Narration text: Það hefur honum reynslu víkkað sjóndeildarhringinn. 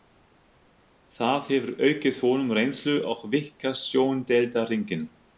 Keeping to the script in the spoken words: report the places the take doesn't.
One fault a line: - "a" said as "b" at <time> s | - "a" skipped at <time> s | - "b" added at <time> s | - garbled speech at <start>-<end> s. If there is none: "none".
- "aukið" added at 1.9 s
- "og" added at 3.1 s